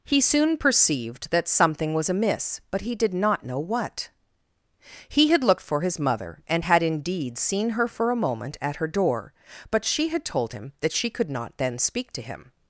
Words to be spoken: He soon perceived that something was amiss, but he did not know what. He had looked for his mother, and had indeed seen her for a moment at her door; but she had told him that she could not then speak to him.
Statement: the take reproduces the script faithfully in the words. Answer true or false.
true